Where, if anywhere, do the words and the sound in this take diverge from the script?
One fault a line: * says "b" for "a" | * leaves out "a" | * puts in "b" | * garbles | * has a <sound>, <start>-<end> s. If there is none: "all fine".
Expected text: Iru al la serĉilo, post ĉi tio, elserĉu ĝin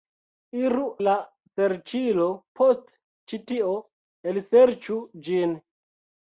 * leaves out "al"